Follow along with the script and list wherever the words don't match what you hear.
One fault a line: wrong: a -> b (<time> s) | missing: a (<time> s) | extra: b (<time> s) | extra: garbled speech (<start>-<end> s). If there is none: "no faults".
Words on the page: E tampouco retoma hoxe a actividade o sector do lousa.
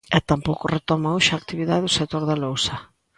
wrong: do -> da (2.3 s)